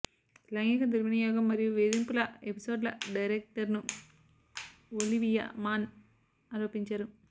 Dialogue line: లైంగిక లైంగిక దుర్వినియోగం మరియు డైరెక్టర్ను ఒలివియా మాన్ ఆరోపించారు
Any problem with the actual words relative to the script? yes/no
yes